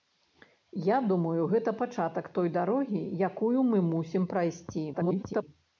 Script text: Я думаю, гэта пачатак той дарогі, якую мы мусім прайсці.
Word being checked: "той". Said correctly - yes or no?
yes